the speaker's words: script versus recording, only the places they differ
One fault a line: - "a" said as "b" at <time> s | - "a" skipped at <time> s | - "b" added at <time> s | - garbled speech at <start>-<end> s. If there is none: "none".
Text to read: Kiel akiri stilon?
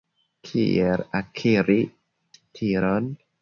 none